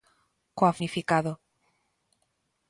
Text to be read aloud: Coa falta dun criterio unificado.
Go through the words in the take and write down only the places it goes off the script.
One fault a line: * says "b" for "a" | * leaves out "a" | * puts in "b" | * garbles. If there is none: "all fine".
* leaves out "falta dun criterio"